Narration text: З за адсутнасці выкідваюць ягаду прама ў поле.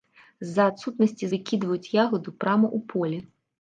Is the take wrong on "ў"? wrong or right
right